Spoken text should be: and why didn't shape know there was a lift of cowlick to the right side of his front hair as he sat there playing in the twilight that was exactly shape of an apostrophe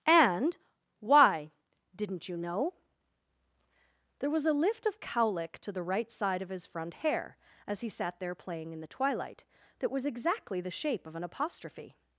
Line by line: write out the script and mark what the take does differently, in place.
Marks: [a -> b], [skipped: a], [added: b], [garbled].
and why didn't [shape -> you] know there was a lift of cowlick to the right side of his front hair as he sat there playing in the twilight that was exactly [added: the] shape of an apostrophe